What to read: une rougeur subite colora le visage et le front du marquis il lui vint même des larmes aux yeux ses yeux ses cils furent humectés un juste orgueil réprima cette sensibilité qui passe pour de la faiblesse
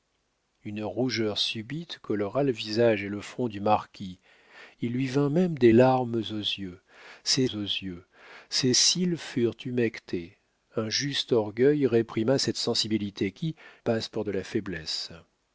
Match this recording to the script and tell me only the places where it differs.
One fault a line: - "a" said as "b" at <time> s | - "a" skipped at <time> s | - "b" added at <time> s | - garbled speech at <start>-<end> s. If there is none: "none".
none